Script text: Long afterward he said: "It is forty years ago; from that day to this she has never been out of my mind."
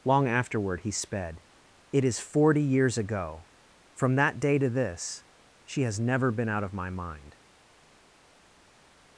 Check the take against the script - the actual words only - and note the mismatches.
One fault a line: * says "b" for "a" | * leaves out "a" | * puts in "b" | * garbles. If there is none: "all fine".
* says "sped" for "said"